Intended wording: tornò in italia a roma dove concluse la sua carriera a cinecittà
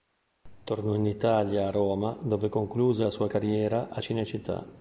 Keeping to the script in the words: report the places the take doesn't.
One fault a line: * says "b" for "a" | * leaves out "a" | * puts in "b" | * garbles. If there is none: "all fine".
all fine